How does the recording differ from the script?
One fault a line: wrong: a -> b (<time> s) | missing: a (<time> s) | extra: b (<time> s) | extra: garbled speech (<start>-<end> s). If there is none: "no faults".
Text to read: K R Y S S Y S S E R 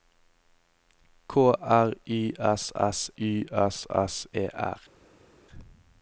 no faults